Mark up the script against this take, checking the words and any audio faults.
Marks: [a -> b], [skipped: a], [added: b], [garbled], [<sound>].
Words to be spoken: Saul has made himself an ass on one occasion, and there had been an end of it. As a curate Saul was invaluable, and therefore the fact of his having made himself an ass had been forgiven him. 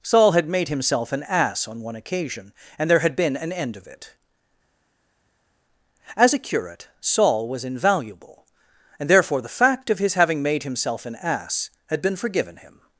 Saul [has -> had] made himself an ass on one occasion, and there had been an end of it. As a curate Saul was invaluable, and therefore the fact of his having made himself an ass had been forgiven him.